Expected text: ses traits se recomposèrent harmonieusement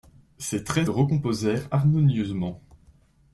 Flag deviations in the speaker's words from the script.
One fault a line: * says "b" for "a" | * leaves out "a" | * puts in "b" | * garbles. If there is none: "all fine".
* leaves out "se"